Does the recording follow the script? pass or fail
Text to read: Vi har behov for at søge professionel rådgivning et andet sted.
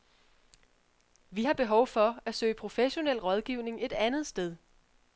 pass